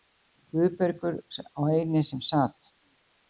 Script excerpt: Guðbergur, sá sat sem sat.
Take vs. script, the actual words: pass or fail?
fail